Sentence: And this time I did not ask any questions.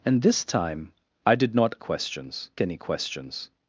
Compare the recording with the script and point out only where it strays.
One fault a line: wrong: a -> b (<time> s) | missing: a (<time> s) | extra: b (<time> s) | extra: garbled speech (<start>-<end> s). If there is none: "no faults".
wrong: ask -> questions (1.8 s)